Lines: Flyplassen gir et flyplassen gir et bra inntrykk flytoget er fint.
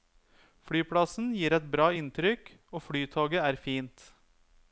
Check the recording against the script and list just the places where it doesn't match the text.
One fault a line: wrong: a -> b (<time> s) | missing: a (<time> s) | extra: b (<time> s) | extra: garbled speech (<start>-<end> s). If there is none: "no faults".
missing: flyplassen gir et (1.7 s)
extra: og (2.7 s)